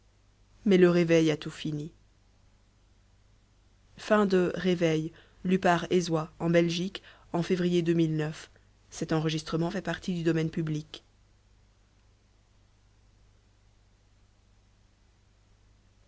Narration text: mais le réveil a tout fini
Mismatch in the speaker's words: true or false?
false